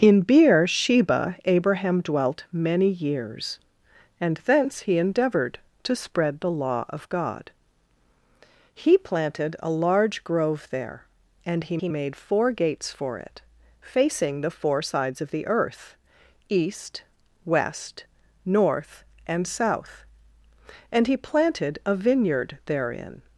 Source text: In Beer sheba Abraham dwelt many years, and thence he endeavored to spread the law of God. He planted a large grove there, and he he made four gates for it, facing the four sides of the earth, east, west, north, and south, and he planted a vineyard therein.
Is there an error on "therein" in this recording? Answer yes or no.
no